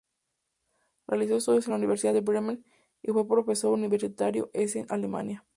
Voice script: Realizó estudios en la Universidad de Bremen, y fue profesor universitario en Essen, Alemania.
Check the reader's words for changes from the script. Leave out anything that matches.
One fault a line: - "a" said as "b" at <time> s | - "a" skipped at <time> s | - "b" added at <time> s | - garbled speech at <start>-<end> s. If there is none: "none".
none